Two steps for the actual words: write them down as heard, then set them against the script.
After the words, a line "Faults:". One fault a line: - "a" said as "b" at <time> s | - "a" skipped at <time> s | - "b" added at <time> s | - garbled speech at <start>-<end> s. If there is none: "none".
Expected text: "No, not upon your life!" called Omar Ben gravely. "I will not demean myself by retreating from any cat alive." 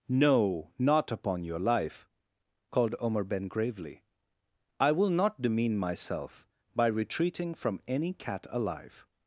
"No, not upon your life!" called Omar Ben gravely. "I will not demean myself by retreating from any cat alive."
Faults:
none